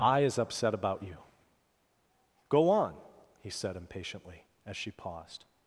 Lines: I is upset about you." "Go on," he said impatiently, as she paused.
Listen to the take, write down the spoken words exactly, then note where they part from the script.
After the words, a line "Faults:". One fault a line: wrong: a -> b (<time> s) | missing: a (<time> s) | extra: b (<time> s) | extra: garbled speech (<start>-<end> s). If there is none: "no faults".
I is upset about you." "Go on," he said impatiently, as she paused.
Faults:
no faults